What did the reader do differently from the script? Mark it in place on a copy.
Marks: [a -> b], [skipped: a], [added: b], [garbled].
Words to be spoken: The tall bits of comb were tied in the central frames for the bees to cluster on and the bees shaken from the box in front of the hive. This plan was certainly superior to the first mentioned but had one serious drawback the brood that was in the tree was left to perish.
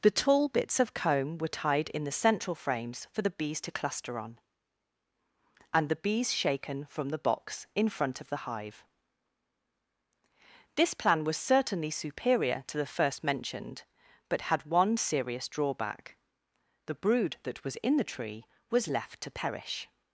The tall bits of comb were tied in the central frames for the bees to cluster on and the bees shaken from the box in front of the hive. This plan was certainly superior to the first mentioned but had one serious drawback the brood that was in the tree was left to perish.